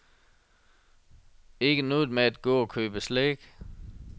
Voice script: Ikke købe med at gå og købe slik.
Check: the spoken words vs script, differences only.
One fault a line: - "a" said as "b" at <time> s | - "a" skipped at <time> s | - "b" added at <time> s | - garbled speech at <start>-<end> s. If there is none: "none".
- "købe" said as "noget" at 1.8 s